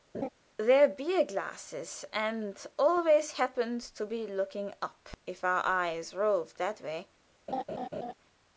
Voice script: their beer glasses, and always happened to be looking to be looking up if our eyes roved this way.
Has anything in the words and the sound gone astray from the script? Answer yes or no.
yes